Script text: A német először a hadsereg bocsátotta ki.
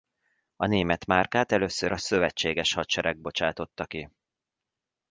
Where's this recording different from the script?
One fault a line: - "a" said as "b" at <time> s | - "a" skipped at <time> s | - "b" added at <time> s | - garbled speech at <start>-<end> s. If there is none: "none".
- "márkát" added at 1.1 s
- "szövetséges" added at 2.0 s